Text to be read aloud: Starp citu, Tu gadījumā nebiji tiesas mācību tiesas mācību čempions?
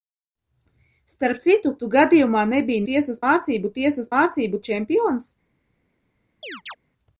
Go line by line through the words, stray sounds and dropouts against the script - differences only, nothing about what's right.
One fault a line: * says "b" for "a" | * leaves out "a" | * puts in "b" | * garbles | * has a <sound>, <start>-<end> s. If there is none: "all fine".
* has a chirp, 6.4-6.8 s